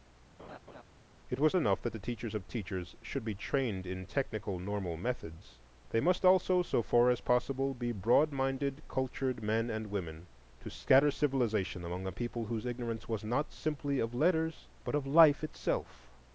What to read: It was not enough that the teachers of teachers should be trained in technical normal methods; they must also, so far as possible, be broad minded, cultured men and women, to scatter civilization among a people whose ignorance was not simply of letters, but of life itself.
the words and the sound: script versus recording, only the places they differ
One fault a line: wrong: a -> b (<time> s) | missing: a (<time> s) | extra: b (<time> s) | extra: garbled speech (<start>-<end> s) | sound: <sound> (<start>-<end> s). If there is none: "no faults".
sound: laugh (0.4-0.8 s)
missing: not (1.6 s)